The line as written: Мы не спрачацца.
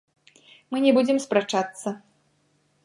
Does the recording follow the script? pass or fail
fail